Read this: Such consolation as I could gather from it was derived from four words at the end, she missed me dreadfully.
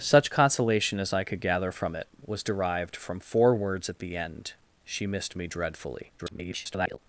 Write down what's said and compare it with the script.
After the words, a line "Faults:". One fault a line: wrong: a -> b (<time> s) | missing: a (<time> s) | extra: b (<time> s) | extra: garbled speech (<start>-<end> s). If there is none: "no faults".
Such consolation as I could gather from it was derived from four words at the end, she missed me dreadfully. [garbled]
Faults:
extra: garbled speech (6.2-7.0 s)